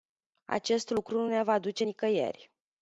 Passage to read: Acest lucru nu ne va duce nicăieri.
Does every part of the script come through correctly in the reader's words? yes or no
yes